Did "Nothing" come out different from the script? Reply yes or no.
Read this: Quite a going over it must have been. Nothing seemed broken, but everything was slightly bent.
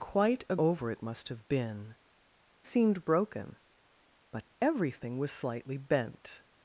yes